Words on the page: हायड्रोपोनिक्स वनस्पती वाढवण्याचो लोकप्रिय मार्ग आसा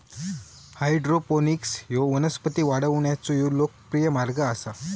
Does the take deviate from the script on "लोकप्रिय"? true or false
false